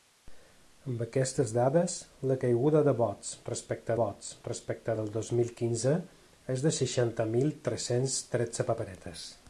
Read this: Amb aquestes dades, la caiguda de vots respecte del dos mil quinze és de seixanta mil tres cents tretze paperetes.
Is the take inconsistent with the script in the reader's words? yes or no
yes